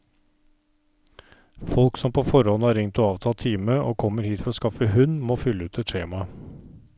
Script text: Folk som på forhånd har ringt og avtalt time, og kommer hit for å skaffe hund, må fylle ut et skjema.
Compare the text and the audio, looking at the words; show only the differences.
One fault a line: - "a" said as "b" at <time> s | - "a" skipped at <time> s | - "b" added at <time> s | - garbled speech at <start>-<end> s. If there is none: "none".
none